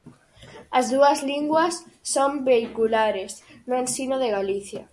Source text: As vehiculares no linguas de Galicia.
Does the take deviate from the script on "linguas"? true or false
true